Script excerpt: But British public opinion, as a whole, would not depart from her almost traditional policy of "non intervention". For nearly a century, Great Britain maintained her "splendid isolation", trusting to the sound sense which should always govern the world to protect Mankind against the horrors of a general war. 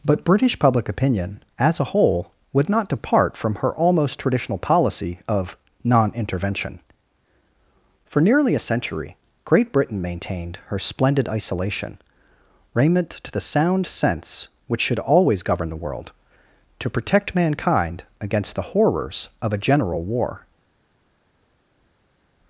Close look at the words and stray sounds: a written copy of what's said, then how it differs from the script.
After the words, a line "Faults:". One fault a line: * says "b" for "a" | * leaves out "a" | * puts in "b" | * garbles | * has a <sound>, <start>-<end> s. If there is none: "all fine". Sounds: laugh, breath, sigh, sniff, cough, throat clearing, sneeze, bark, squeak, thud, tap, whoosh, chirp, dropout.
But British public opinion, as a whole, would not depart from her almost traditional policy of "non intervention". For nearly a century, Great Britain maintained her "splendid isolation", raiment to the sound sense which should always govern the world to protect Mankind against the horrors of a general war.
Faults:
* says "raiment" for "trusting"